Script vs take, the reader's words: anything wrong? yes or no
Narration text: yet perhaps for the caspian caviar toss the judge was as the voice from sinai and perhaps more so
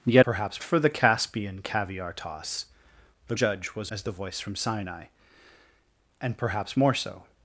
no